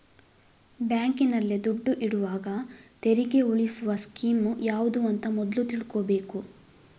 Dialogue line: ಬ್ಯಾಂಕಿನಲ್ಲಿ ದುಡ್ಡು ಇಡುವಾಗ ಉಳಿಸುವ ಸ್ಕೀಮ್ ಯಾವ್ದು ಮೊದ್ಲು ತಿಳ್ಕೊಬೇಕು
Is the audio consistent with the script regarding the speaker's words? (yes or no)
no